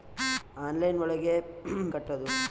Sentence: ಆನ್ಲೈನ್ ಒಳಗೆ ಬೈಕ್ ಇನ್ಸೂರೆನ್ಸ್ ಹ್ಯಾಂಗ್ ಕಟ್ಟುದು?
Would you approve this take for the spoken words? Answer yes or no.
no